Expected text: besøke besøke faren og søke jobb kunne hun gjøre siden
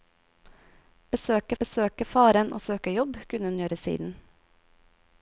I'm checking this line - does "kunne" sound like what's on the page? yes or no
yes